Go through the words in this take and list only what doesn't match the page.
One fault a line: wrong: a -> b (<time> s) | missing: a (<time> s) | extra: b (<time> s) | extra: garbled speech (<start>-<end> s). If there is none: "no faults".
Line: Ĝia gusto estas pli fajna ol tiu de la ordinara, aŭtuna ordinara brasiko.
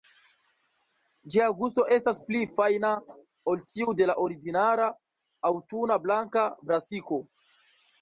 wrong: ordinara -> blanka (6.1 s)